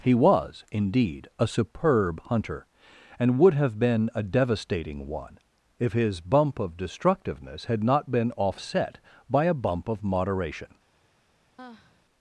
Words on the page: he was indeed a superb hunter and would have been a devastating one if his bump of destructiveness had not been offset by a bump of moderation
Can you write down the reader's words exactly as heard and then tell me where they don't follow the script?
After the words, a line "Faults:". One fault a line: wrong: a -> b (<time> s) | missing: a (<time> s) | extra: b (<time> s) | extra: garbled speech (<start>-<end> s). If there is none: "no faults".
he was indeed a superb hunter and would have been a devastating one if his bump of destructiveness had not been offset by a bump of moderation
Faults:
no faults